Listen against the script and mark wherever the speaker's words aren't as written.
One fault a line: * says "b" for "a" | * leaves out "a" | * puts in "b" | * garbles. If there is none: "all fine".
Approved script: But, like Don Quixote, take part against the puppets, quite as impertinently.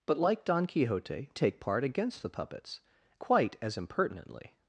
all fine